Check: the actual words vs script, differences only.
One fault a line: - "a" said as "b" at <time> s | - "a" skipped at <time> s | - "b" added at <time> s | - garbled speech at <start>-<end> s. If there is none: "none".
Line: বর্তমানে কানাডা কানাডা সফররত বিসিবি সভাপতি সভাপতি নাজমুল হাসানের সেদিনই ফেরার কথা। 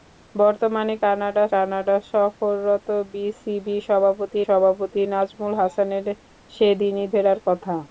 none